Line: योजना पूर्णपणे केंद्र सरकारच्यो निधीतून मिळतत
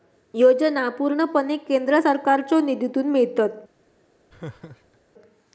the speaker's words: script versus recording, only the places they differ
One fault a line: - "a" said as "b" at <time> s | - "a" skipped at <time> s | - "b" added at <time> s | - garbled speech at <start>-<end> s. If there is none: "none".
none